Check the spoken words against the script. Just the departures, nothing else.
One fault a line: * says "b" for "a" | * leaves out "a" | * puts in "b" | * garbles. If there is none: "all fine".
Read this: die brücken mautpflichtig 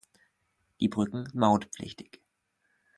all fine